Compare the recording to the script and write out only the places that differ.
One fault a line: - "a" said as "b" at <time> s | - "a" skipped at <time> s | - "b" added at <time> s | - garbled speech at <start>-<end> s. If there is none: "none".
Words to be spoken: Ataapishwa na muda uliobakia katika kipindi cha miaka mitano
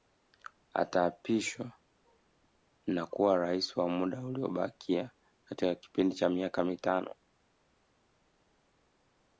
- "kuwa Rais wa" added at 3.1 s